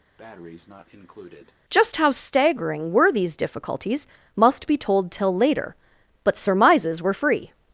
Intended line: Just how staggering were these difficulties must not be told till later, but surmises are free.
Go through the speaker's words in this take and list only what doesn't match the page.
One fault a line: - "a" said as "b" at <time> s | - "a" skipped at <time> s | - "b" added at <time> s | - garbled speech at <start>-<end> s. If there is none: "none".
- "not" skipped at 4.7 s
- "are" said as "were" at 7.0 s